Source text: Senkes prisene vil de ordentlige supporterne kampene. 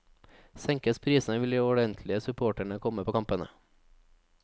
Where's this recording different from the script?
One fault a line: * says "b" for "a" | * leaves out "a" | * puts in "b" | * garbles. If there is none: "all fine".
* puts in "komme på"